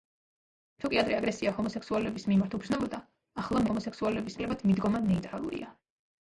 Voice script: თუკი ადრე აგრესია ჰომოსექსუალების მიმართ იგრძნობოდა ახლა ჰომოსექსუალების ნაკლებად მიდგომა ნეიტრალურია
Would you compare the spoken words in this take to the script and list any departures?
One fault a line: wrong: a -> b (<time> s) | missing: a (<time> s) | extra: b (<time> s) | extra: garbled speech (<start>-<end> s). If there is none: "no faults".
no faults